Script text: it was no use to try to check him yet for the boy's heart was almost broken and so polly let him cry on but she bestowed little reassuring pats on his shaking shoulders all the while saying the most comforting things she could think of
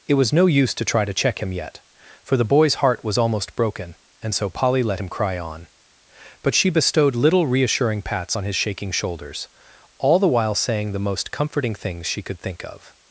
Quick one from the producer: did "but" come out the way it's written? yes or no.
yes